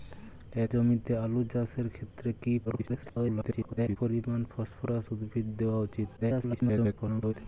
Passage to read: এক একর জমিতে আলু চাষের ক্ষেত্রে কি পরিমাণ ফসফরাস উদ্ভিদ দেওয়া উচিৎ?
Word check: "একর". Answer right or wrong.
wrong